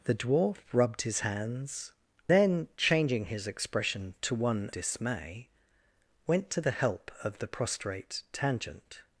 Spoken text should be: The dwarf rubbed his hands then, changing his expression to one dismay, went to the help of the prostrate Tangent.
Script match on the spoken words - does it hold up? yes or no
yes